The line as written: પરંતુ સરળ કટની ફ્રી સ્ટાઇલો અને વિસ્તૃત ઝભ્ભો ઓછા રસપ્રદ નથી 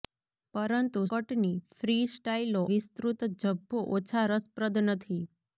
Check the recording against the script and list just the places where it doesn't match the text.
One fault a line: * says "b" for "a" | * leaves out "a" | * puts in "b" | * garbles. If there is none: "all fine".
* leaves out "સરળ"
* leaves out "અને"